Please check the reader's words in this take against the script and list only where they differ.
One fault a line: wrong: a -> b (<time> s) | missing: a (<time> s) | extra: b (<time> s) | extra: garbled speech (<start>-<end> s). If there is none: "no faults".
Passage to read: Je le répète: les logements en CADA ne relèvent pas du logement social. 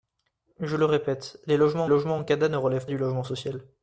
extra: logements (1.9 s)
missing: pas (2.9 s)